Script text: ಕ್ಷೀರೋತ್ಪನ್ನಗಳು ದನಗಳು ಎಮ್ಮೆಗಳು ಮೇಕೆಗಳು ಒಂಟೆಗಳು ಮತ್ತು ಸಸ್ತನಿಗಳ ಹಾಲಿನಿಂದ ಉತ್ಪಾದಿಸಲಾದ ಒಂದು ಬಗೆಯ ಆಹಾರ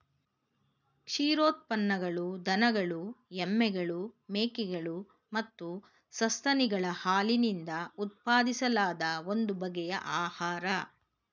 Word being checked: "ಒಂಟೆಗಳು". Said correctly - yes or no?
no